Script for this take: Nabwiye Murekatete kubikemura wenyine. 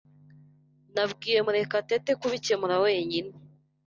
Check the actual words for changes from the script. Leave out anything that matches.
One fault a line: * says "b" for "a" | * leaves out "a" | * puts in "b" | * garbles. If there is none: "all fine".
all fine